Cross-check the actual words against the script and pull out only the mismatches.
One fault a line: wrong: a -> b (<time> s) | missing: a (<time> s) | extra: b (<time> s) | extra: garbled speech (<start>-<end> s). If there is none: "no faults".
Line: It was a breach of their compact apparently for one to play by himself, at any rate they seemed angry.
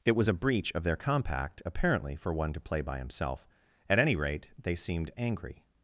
no faults